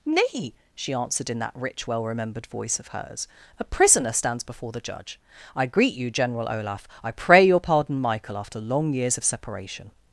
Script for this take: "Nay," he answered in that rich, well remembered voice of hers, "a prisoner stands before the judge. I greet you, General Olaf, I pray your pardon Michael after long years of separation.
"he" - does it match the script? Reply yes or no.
no